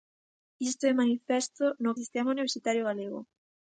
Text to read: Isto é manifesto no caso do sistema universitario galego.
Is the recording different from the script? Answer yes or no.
yes